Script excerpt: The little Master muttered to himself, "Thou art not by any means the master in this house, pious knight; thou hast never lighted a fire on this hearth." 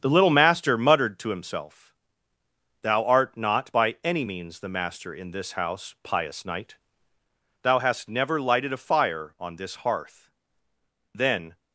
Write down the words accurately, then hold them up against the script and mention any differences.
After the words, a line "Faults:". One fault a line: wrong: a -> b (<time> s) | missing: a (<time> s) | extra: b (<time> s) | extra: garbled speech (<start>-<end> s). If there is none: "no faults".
The little Master muttered to himself, "Thou art not by any means the master in this house, pious knight; thou hast never lighted a fire on this hearth." Then
Faults:
extra: Then (11.1 s)